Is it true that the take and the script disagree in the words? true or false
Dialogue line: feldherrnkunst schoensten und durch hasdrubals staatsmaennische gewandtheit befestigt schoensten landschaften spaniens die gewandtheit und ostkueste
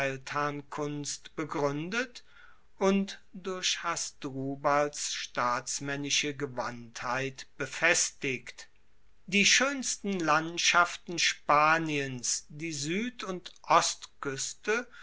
true